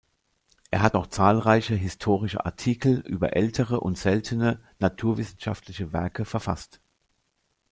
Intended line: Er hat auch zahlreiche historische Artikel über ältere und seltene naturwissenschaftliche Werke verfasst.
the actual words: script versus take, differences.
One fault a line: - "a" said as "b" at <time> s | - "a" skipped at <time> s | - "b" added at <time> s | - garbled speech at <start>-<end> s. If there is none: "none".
none